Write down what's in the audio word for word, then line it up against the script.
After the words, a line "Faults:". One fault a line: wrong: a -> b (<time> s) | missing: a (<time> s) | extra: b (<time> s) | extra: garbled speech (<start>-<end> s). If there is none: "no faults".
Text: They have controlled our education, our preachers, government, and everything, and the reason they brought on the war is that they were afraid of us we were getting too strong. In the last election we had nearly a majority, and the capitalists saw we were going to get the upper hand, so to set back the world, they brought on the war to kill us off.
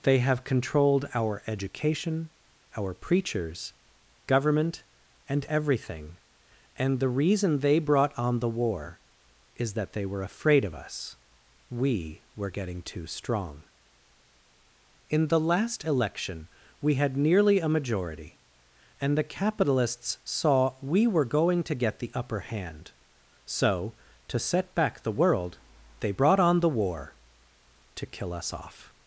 They have controlled our education, our preachers, government, and everything, and the reason they brought on the war is that they were afraid of us we were getting too strong. In the last election we had nearly a majority, and the capitalists saw we were going to get the upper hand, so to set back the world, they brought on the war to kill us off.
Faults:
no faults